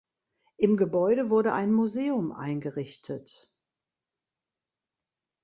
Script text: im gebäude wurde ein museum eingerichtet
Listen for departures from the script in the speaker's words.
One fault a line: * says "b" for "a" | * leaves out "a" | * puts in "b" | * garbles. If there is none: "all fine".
all fine